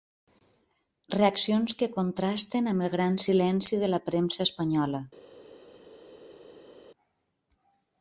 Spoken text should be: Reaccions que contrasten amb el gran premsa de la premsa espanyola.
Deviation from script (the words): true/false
true